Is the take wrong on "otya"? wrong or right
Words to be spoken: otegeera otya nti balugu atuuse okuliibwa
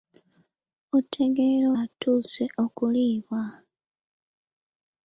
wrong